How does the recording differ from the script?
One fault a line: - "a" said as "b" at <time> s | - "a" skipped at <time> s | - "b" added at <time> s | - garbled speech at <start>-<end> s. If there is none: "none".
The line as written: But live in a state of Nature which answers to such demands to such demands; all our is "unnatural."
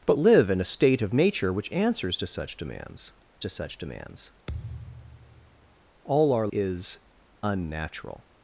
none